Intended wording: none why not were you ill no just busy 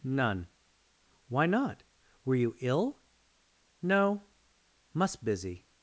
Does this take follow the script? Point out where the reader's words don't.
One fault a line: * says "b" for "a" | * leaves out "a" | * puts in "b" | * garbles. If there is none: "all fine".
* says "must" for "just"